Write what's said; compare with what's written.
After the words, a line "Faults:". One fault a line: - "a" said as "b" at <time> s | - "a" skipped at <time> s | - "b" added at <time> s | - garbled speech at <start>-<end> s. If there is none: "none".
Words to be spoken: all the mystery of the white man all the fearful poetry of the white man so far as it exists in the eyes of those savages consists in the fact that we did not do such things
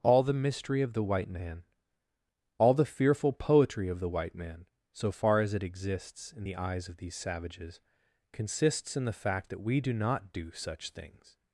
all the mystery of the white man all the fearful poetry of the white man so far as it exists in the eyes of these savages consists in the fact that we do not do such things
Faults:
- "those" said as "these" at 7.0 s
- "did" said as "do" at 9.8 s